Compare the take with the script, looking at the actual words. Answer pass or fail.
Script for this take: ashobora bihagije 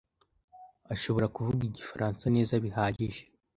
fail